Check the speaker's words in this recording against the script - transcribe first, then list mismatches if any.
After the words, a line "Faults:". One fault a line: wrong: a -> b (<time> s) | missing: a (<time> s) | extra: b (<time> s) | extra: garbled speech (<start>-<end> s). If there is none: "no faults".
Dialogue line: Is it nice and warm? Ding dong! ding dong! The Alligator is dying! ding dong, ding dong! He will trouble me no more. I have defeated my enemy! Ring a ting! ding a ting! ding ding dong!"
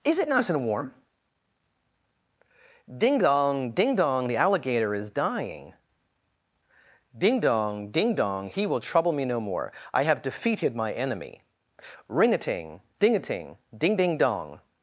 Is it nice and warm? Ding dong! ding dong! The Alligator is dying! ding dong, ding dong! He will trouble me no more. I have defeated my enemy! Ring a ting! ding a ting! ding ding dong!"
Faults:
no faults